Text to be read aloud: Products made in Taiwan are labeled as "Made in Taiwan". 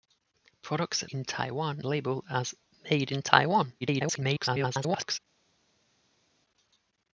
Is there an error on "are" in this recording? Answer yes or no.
yes